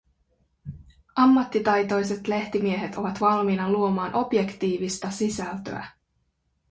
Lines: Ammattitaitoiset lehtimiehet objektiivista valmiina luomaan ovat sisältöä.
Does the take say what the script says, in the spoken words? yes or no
no